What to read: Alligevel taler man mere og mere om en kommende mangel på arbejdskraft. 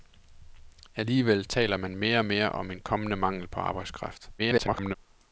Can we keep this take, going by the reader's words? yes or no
no